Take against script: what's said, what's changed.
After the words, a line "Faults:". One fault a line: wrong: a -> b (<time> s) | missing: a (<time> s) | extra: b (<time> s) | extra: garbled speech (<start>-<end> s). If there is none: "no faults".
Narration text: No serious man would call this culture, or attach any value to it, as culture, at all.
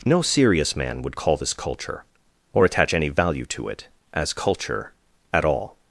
No serious man would call this culture, or attach any value to it, as culture, at all.
Faults:
no faults